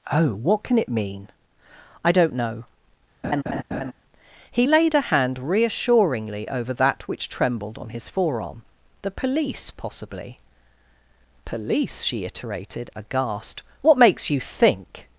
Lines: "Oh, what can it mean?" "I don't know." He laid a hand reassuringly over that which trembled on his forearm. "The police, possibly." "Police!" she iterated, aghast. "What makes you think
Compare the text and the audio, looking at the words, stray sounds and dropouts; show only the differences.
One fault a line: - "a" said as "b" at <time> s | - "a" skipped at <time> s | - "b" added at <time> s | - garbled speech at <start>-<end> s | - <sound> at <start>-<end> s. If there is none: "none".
- laugh at 3.2-3.9 s